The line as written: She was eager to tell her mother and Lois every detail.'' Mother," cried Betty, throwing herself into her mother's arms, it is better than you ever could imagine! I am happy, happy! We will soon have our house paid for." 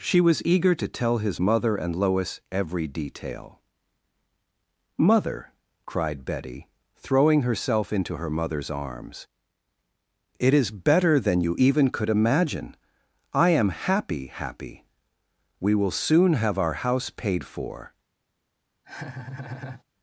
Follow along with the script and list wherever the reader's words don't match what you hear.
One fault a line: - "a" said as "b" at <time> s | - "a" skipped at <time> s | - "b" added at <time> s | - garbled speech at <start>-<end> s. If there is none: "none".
- "her" said as "his" at 1.2 s
- "ever" said as "even" at 11.6 s